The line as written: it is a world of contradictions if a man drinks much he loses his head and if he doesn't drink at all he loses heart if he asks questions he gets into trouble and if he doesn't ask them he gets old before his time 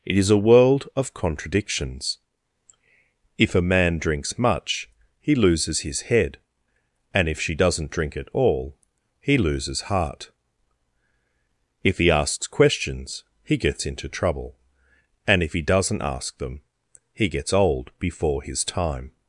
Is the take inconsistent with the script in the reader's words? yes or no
yes